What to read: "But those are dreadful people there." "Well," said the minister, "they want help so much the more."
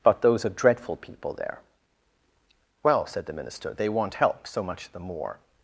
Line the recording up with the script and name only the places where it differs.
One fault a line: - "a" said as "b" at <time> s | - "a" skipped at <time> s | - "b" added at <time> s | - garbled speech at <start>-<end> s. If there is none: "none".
none